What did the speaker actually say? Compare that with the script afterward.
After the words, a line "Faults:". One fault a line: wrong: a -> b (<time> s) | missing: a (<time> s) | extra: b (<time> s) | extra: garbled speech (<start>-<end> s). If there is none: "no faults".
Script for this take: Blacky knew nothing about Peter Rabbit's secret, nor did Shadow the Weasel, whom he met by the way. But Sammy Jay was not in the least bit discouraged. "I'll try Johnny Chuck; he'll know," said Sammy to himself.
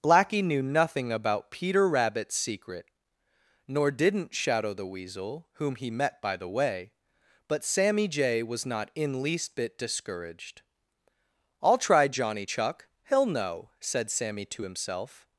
Blacky knew nothing about Peter Rabbit's secret, nor didn't Shadow the Weasel, whom he met by the way. But Sammy Jay was not in least bit discouraged. "I'll try Johnny Chuck; he'll know," said Sammy to himself.
Faults:
wrong: did -> didn't (3.9 s)
missing: the (9.2 s)